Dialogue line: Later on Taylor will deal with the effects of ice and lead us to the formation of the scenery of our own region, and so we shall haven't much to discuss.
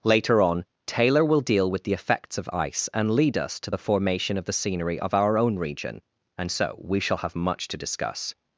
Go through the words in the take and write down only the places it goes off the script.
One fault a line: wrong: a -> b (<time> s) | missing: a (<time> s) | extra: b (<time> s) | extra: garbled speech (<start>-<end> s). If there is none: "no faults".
wrong: haven't -> have (7.2 s)